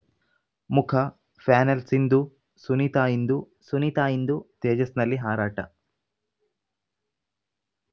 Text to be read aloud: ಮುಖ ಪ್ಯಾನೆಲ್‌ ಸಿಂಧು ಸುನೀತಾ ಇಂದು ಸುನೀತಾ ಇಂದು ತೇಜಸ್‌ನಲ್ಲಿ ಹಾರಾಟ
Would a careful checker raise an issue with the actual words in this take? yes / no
no